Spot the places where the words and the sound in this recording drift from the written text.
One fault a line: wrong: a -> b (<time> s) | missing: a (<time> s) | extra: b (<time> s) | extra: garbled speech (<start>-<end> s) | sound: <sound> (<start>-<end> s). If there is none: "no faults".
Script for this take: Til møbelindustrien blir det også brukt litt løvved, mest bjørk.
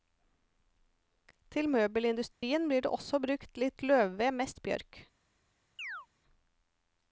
sound: dropout (2.3-2.4 s)
sound: chirp (5.8-6.1 s)